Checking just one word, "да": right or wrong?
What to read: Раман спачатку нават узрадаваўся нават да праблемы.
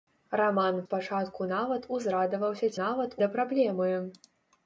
right